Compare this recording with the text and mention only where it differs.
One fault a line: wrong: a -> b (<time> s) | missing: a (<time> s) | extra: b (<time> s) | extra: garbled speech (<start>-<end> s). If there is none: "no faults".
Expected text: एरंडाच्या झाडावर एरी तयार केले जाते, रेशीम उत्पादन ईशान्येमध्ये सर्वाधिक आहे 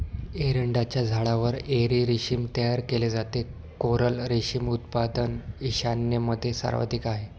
extra: रेशीम (2.0 s)
extra: कोरल (3.8 s)